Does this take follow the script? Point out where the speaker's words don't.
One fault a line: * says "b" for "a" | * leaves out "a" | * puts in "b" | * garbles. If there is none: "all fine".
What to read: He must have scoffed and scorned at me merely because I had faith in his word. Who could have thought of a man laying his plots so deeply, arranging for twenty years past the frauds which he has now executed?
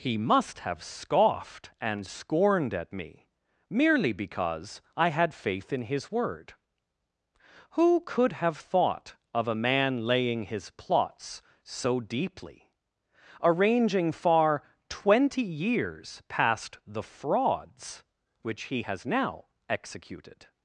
* says "far" for "for"